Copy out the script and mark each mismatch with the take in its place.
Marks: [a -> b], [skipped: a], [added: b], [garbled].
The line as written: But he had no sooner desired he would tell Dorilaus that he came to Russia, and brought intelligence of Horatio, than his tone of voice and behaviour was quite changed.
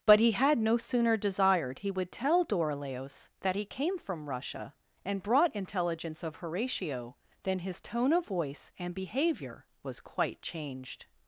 But he had no sooner desired he would tell Dorilaus that he came [to -> from] Russia, and brought intelligence of Horatio, than his tone of voice and behaviour was quite changed.